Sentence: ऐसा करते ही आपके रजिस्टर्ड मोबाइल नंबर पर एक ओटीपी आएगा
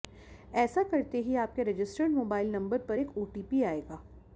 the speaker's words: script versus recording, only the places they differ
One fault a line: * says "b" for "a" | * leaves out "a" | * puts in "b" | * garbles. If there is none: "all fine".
all fine